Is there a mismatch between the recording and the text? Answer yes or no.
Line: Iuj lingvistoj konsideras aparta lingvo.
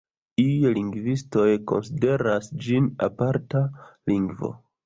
yes